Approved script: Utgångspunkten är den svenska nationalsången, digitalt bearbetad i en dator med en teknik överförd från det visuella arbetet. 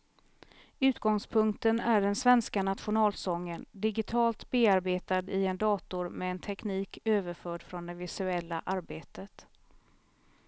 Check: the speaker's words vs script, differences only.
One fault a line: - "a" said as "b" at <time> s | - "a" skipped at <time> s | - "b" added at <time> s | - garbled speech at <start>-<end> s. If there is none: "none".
none